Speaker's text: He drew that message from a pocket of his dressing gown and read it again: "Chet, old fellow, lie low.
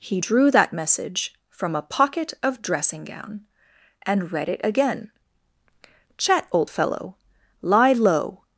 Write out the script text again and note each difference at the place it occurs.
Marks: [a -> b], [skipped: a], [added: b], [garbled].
He drew that message from a pocket of [skipped: his] dressing gown and read it again: "Chet, old fellow, lie low.